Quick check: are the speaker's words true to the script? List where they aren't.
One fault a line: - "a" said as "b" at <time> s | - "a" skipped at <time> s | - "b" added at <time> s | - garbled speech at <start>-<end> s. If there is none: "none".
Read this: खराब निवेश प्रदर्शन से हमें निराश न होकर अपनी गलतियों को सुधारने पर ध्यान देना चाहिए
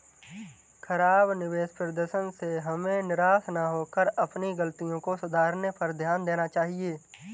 none